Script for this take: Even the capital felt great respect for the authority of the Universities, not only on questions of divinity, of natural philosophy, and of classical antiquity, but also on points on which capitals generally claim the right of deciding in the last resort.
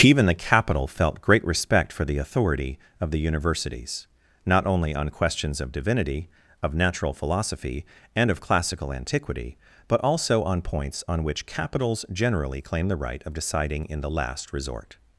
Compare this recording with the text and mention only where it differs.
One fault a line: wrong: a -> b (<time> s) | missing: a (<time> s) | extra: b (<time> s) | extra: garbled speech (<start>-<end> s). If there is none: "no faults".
no faults